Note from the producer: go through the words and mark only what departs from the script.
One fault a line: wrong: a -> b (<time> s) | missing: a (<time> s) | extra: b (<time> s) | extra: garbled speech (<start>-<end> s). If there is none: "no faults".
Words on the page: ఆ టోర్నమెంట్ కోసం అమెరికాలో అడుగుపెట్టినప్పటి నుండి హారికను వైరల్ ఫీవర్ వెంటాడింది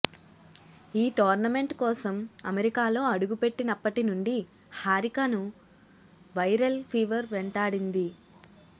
wrong: ఆ -> ఈ (0.9 s)